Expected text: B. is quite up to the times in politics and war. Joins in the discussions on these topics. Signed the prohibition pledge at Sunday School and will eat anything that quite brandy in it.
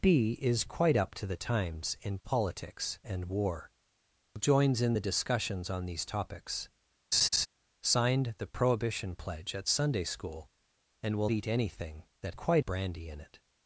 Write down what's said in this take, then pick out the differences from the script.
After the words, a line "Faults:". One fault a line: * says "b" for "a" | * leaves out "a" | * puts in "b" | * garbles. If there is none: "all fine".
B. is quite up to the times in politics and war. Joins in the discussions on these topics. Signed the prohibition pledge at Sunday School and will eat anything that quite brandy in it.
Faults:
all fine